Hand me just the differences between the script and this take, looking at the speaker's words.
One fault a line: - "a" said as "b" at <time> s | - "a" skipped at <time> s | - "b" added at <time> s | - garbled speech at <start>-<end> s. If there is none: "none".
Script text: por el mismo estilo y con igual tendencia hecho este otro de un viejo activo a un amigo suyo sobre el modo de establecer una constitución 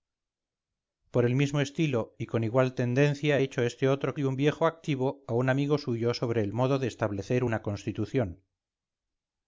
none